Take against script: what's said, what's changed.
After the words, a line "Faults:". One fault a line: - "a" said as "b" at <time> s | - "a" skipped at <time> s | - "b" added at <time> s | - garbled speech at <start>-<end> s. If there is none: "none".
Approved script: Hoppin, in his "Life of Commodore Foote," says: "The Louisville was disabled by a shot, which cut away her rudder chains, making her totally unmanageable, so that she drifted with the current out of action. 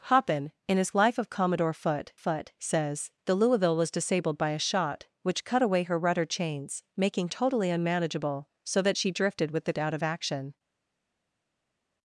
Hoppin, in his "Life of Commodore Foote Foote," says: "The Louisville was disabled by a shot, which cut away her rudder chains, making totally unmanageable, so that she drifted with the out of action.
Faults:
- "Foote" added at 2.1 s
- "her" skipped at 7.3 s
- "current" skipped at 9.7 s